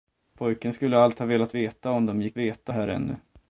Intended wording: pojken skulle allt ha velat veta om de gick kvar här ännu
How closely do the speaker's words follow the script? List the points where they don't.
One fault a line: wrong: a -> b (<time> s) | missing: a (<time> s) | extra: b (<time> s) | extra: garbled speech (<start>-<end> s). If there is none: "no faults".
wrong: kvar -> veta (2.4 s)